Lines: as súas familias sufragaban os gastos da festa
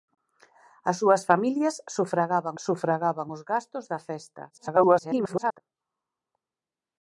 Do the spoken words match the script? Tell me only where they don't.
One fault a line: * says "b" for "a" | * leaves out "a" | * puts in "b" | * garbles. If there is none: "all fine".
* puts in "sufragaban"
* garbles